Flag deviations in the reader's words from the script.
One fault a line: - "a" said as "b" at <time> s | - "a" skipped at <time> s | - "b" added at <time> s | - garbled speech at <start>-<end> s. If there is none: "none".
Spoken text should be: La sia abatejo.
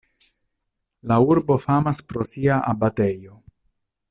- "urbo famas pro" added at 1.3 s